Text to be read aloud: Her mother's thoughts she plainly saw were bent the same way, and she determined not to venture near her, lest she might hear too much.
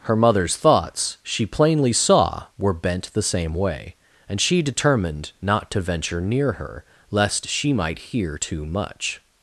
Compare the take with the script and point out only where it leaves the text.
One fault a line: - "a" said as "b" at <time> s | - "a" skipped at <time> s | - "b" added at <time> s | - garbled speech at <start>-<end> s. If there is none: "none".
none